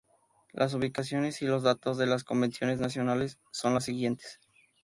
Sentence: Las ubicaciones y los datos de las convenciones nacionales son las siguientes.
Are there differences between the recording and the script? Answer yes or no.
no